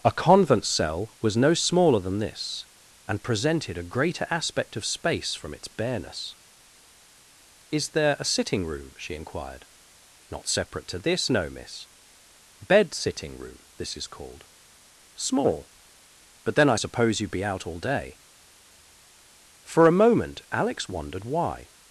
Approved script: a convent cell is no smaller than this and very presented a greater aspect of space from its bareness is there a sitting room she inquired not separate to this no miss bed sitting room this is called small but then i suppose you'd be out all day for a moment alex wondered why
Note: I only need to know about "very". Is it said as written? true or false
false